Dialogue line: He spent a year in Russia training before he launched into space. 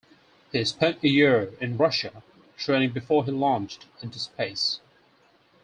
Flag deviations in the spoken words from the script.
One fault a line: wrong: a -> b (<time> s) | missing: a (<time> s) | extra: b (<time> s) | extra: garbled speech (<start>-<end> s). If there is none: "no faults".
no faults